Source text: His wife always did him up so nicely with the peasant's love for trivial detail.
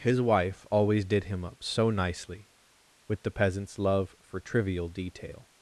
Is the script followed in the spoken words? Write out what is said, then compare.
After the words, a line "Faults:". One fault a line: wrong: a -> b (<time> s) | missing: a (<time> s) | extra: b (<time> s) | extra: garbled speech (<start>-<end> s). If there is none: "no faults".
His wife always did him up so nicely with the peasant's love for trivial detail.
Faults:
no faults